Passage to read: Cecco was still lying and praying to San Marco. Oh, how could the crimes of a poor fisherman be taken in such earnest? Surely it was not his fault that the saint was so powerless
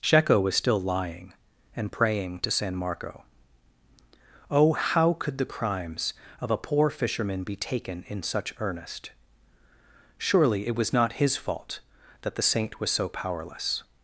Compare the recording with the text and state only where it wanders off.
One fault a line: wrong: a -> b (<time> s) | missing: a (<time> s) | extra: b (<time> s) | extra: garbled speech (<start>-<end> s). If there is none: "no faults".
no faults